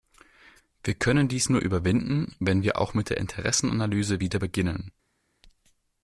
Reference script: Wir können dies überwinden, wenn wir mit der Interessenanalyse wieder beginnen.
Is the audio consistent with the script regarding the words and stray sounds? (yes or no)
no